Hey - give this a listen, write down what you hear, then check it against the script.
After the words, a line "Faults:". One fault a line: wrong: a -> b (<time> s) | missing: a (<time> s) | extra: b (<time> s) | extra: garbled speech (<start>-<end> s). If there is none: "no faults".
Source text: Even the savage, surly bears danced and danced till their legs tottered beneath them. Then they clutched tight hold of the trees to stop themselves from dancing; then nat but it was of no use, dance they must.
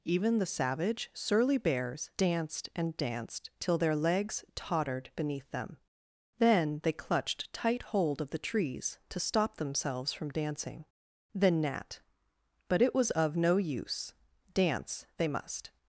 Even the savage, surly bears danced and danced till their legs tottered beneath them. Then they clutched tight hold of the trees to stop themselves from dancing; then nat but it was of no use, dance they must.
Faults:
no faults